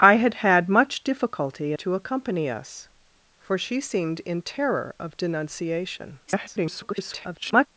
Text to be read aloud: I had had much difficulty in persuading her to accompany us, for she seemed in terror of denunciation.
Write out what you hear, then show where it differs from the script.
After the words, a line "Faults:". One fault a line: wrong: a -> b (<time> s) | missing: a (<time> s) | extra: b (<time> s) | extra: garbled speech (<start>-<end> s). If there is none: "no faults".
I had had much difficulty to accompany us, for she seemed in terror of denunciation. [garbled]
Faults:
missing: in persuading her (1.7 s)
extra: garbled speech (6.3-7.7 s)